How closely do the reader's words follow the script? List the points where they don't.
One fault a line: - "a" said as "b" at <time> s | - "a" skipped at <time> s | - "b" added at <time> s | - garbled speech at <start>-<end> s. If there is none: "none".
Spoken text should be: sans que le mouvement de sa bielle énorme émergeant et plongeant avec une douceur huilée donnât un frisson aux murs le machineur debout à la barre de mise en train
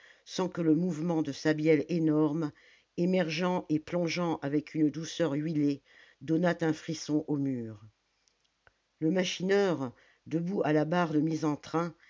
none